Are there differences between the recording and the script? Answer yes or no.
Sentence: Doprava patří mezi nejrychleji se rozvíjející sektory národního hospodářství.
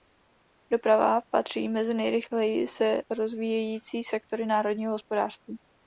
no